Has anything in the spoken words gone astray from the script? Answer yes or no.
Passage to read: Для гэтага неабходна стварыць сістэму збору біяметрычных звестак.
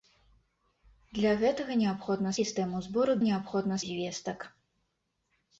yes